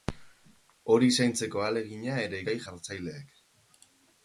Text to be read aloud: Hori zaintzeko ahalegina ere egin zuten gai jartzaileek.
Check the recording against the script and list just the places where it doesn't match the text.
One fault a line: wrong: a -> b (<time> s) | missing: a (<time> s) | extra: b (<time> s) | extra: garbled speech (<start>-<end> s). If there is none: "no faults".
missing: egin zuten (2.4 s)